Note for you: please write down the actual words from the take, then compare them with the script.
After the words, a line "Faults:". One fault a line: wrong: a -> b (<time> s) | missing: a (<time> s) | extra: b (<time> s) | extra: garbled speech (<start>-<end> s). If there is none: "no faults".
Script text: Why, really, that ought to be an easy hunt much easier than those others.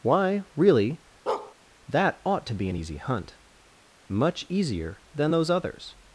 Why, really, that ought to be an easy hunt much easier than those others.
Faults:
no faults